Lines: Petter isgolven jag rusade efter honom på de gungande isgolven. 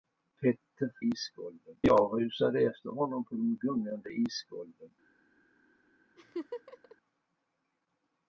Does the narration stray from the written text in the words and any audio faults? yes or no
yes